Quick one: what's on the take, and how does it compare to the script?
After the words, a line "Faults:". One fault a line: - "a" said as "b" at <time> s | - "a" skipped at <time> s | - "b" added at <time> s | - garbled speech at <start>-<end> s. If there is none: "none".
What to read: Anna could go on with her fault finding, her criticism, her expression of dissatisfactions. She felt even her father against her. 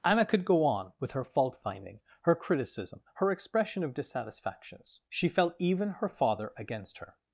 Anna could go on with her fault finding, her criticism, her expression of dissatisfactions. She felt even her father against her.
Faults:
none